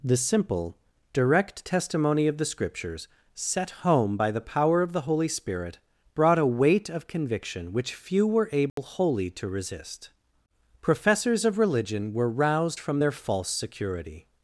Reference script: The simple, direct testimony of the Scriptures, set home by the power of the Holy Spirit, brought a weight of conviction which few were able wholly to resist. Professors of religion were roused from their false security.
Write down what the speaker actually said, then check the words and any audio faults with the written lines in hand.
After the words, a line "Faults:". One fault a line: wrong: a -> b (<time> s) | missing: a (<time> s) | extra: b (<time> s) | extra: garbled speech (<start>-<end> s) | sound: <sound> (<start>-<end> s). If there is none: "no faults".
The simple, direct testimony of the Scriptures, set home by the power of the Holy Spirit, brought a weight of conviction which few were able wholly to resist. Professors of religion were roused from their false security.
Faults:
sound: dropout (8.7-8.8 s)